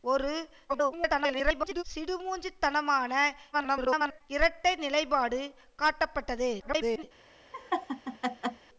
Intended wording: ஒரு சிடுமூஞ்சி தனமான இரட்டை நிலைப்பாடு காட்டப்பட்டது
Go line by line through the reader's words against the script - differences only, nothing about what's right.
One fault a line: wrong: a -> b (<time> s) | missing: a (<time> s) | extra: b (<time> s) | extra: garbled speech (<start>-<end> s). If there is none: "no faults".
extra: garbled speech (0.7-1.8 s)
extra: garbled speech (3.5-4.2 s)
extra: garbled speech (6.6-7.0 s)